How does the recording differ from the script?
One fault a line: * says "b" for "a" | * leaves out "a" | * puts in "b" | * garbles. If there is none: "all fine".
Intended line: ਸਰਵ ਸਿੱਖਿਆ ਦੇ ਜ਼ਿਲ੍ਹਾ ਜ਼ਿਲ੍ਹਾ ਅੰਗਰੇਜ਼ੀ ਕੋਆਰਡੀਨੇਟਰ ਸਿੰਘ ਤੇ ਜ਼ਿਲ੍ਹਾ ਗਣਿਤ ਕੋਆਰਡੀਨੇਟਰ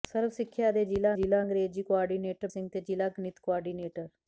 all fine